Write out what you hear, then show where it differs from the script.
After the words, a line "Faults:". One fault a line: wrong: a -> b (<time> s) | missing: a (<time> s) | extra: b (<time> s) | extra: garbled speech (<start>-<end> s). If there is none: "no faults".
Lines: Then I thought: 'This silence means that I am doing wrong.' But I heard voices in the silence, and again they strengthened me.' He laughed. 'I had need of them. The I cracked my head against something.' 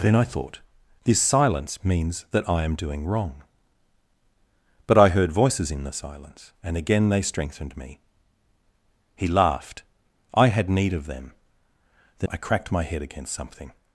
Then I thought: 'This silence means that I am doing wrong.' But I heard voices in the silence, and again they strengthened me.' He laughed. 'I had need of them. The I cracked my head against something.'
Faults:
no faults